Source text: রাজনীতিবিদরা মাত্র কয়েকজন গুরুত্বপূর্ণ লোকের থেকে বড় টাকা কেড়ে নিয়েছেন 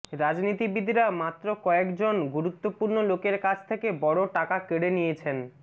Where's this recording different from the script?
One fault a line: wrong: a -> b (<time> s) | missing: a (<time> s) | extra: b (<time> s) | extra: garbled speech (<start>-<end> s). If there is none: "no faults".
extra: কাছ (3.4 s)